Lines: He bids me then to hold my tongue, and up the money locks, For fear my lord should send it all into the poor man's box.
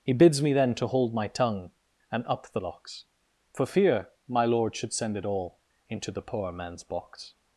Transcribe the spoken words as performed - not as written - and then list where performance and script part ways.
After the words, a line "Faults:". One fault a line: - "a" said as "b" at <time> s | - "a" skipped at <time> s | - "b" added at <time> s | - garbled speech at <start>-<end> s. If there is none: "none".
He bids me then to hold my tongue, and up the locks, For fear my lord should send it all into the poor man's box.
Faults:
- "money" skipped at 2.6 s